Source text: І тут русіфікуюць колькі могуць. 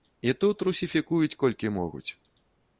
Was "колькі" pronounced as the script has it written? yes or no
yes